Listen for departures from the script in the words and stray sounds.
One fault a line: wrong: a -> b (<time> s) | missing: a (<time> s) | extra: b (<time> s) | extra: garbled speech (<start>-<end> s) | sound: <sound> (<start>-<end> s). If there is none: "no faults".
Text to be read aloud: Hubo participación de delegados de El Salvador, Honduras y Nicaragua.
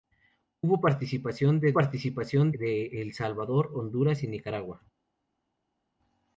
wrong: delegados -> participación (1.7 s)